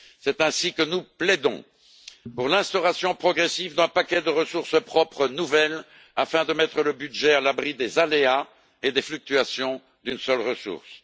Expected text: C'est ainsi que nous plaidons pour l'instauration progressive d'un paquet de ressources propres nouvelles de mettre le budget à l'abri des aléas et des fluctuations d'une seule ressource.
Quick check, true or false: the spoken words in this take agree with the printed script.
false